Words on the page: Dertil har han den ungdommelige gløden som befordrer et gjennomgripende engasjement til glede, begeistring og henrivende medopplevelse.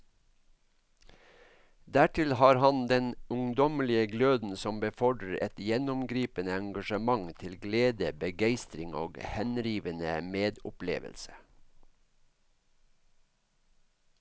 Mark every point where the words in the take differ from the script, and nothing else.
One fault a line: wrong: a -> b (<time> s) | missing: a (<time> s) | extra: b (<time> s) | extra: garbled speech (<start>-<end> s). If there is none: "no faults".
no faults